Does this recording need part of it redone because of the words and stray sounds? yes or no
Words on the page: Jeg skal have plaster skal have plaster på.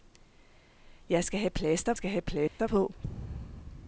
yes